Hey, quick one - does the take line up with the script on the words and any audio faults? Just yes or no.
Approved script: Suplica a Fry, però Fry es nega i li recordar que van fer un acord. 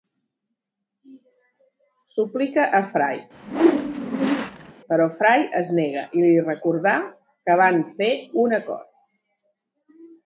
no